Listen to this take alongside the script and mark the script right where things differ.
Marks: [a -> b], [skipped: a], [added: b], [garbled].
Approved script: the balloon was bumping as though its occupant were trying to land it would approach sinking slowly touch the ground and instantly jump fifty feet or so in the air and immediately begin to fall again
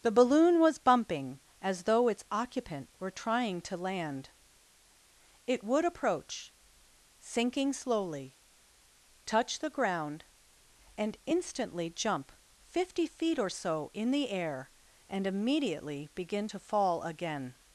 the balloon was bumping as though its occupant were trying to land it would approach sinking slowly touch the ground and instantly jump fifty feet or so in the air and immediately begin to fall again